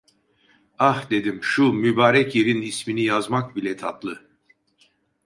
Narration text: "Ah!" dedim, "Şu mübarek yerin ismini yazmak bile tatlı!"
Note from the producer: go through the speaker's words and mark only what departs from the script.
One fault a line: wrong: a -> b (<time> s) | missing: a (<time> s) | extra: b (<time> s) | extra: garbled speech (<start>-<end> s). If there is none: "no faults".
no faults